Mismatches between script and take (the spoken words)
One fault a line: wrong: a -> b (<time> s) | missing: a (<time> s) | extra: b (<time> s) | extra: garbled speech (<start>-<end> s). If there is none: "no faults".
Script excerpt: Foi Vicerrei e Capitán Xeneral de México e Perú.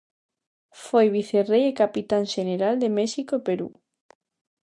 no faults